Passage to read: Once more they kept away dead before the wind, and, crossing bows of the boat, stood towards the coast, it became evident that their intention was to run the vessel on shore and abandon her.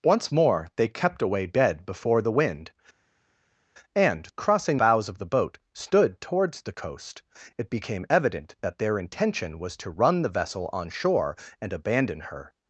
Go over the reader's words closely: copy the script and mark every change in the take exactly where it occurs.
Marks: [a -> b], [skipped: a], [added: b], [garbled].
Once more they kept away dead before the wind, and, crossing bows of the boat, stood towards the coast, it became evident that their intention was to run the vessel on shore and abandon her.